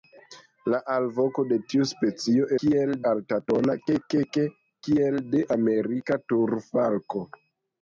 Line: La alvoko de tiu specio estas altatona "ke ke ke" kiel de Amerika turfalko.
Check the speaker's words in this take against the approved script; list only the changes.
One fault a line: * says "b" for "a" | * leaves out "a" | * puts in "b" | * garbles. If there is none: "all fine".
* says "kiel" for "estas"